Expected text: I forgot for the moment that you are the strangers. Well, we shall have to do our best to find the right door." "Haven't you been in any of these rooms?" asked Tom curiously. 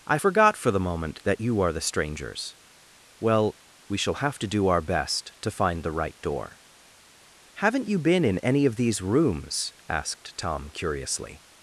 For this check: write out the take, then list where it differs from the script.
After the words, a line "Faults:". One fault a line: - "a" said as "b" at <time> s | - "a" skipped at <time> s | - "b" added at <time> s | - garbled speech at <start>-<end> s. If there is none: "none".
I forgot for the moment that you are the strangers. Well, we shall have to do our best to find the right door." "Haven't you been in any of these rooms?" asked Tom curiously.
Faults:
none